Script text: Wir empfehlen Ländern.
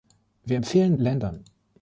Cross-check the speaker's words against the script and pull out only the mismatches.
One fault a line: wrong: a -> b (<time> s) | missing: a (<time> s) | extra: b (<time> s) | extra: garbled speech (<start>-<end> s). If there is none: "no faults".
no faults